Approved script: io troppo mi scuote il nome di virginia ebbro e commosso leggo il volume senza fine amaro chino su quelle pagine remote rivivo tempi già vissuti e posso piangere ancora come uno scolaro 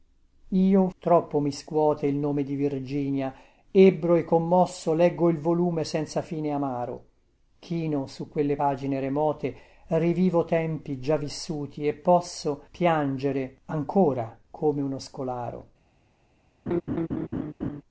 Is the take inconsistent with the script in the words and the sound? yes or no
yes